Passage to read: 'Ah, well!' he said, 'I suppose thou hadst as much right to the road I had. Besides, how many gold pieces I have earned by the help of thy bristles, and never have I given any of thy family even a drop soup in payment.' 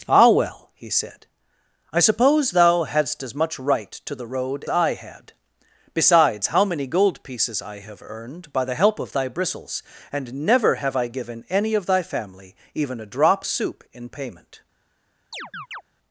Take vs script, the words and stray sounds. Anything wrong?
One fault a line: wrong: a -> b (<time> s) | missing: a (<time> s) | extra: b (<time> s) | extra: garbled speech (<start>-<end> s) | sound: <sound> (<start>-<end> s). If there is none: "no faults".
sound: chirp (15.3-15.8 s)